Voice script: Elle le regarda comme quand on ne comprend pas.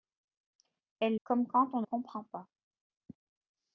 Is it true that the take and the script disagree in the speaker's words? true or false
true